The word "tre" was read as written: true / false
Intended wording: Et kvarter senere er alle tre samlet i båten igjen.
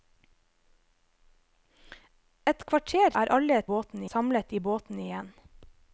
false